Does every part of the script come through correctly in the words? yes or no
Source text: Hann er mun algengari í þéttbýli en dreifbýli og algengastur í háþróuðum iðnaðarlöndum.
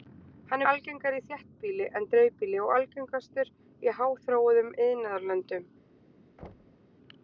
no